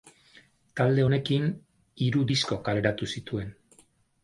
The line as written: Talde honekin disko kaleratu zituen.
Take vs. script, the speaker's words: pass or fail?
fail